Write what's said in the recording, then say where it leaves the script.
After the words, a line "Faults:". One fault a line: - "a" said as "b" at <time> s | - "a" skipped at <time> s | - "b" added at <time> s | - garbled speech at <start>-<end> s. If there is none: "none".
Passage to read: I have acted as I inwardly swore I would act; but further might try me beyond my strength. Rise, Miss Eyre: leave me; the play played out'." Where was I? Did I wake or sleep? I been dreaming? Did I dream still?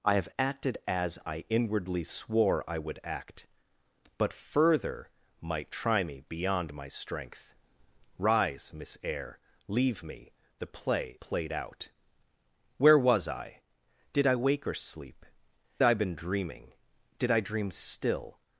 I have acted as I inwardly swore I would act; but further might try me beyond my strength. Rise, Miss Eyre: leave me; the play played out'." Where was I? Did I wake or sleep? I been dreaming? Did I dream still?
Faults:
none